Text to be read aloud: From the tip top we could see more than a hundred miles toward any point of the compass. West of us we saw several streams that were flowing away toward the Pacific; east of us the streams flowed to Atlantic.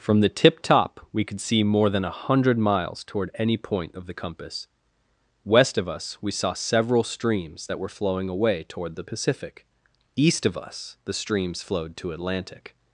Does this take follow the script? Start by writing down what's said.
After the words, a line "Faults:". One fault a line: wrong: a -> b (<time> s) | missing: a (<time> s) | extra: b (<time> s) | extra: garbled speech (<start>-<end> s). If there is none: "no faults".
From the tip top we could see more than a hundred miles toward any point of the compass. West of us we saw several streams that were flowing away toward the Pacific; east of us the streams flowed to Atlantic.
Faults:
no faults